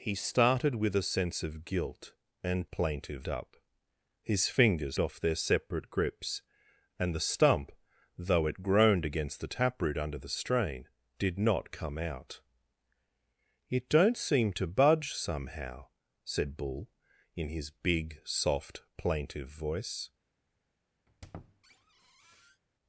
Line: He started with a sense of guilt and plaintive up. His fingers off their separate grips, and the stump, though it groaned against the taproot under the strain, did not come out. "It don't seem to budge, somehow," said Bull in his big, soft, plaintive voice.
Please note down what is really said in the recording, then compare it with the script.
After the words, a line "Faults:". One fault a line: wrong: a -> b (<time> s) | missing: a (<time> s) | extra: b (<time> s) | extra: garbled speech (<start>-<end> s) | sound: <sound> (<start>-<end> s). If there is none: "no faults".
He started with a sense of guilt and plaintive up. His fingers off their separate grips, and the stump, though it groaned against the taproot under the strain, did not come out. "It don't seem to budge, somehow," said Bull in his big, soft, plaintive voice.
Faults:
sound: squeak (21.1-22.6 s)